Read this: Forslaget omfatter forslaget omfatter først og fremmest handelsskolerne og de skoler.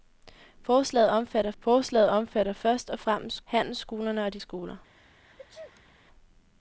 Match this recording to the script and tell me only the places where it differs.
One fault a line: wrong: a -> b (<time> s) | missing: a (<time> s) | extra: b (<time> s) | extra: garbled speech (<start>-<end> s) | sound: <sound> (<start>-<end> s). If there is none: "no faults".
sound: sneeze (4.9-5.9 s)